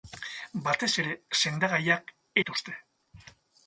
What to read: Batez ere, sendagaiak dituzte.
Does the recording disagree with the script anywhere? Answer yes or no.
no